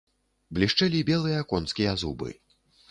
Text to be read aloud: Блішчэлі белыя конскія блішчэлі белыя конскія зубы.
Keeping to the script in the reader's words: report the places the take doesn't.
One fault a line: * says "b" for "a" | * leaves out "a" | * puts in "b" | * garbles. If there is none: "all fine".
* leaves out "блішчэлі белыя конскія"